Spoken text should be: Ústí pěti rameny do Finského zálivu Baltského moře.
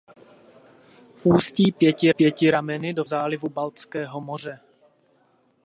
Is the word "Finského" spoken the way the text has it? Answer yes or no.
no